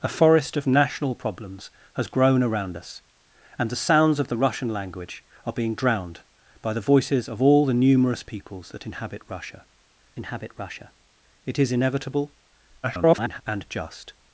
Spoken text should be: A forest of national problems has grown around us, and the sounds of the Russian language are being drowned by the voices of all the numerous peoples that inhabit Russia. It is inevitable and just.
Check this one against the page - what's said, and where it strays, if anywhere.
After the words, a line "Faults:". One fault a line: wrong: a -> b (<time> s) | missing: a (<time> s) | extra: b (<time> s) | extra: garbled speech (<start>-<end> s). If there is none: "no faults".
A forest of national problems has grown around us, and the sounds of the Russian language are being drowned by the voices of all the numerous peoples that inhabit Russia inhabit Russia. It is inevitable [garbled] and just.
Faults:
extra: inhabit Russia (10.2 s)
extra: garbled speech (12.8-13.4 s)